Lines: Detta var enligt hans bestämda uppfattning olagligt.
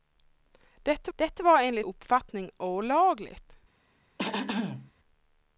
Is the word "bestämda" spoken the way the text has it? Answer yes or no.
no